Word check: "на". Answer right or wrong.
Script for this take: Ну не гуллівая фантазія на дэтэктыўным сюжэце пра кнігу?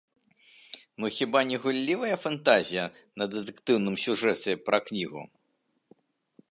right